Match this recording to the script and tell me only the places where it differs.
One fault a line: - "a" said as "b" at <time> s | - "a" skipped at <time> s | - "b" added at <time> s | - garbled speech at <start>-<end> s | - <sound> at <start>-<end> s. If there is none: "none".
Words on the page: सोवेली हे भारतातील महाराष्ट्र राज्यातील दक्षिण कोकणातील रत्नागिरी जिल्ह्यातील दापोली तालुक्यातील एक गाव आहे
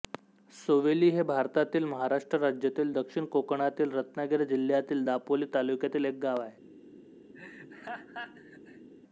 - laugh at 7.3-8.9 s